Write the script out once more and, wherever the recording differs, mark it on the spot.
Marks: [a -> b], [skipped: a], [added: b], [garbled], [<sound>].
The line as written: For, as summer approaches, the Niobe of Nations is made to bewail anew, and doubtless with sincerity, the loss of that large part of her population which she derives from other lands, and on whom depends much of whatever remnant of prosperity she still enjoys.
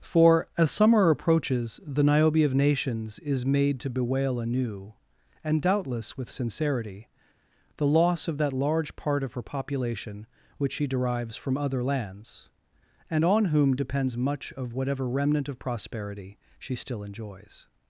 For, as summer approaches, the Niobe of Nations is made to bewail anew, and doubtless with sincerity, the loss of that large part of her population which she derives from other lands, and on whom depends much of whatever remnant of prosperity she still enjoys.